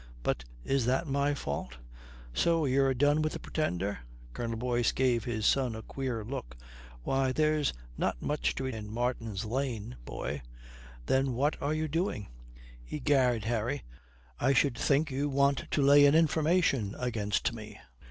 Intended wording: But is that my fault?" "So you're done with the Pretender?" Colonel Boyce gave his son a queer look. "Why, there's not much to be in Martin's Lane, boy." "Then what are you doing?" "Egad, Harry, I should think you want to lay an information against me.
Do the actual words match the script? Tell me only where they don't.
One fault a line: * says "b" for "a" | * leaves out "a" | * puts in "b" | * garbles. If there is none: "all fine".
all fine